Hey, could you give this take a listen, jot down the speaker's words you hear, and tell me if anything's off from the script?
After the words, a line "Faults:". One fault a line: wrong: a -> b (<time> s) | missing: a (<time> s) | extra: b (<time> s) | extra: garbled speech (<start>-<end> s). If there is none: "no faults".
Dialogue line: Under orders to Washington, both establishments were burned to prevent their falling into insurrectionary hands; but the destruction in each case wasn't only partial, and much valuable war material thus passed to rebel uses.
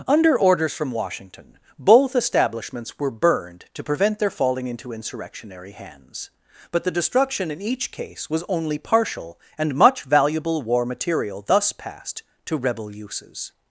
Under orders from Washington, both establishments were burned to prevent their falling into insurrectionary hands; but the destruction in each case was only partial, and much valuable war material thus passed to rebel uses.
Faults:
wrong: to -> from (0.7 s)
wrong: wasn't -> was (8.3 s)